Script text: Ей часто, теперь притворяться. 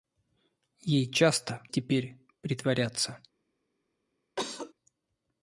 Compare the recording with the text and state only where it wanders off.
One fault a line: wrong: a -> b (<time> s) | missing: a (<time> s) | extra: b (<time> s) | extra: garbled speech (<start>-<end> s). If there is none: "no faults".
no faults